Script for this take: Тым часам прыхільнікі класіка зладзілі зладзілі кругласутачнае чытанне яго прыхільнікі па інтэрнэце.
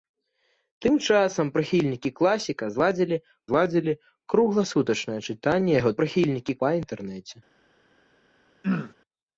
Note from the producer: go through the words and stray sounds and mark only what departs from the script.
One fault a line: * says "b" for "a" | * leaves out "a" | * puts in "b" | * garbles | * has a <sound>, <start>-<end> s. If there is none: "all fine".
* has a throat clearing, 8.6-8.9 s